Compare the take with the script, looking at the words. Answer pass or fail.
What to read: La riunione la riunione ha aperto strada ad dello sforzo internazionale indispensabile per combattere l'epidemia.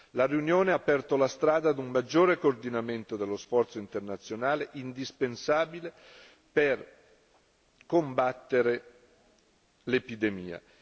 fail